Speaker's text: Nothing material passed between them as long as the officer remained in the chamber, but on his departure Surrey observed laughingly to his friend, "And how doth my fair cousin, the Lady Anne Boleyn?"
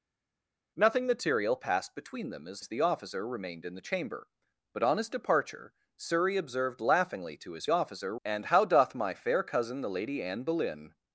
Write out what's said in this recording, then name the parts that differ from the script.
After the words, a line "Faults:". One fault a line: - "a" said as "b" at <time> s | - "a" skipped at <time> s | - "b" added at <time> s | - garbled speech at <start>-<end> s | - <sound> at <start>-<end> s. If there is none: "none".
Nothing material passed between them as as the officer remained in the chamber, but on his departure Surrey observed laughingly to his officer, "And how doth my fair cousin, the Lady Anne Boleyn?"
Faults:
- "long" skipped at 2.6 s
- "friend" said as "officer" at 7.7 s